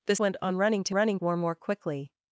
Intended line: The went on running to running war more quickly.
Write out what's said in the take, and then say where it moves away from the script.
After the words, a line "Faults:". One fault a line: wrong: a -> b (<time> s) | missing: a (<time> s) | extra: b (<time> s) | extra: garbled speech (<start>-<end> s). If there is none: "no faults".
The went on running to running war more quickly.
Faults:
no faults